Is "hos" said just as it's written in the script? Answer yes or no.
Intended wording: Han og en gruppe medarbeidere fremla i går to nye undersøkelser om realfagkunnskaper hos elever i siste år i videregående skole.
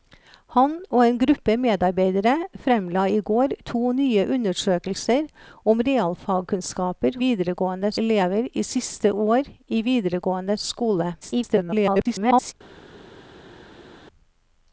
no